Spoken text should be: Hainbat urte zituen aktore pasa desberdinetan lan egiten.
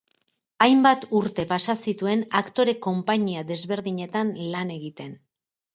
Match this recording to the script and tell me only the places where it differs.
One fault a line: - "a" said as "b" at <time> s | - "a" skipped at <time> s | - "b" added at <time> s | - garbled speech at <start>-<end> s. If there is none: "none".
- "pasa" added at 1.5 s
- "pasa" said as "konpainia" at 2.9 s